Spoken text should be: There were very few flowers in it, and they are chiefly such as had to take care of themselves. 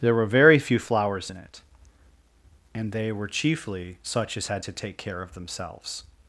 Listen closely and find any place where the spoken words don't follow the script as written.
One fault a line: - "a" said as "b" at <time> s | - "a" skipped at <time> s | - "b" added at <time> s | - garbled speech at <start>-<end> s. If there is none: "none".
- "are" said as "were" at 3.1 s